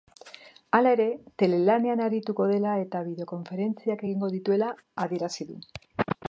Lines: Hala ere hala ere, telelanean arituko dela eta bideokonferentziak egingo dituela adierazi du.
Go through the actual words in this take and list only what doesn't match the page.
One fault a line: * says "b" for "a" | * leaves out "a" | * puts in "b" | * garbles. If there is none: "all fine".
* leaves out "hala ere"